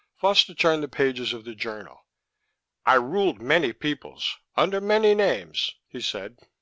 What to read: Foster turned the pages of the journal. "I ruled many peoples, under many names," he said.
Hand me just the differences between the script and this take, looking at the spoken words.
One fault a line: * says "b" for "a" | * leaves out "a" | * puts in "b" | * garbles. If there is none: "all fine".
all fine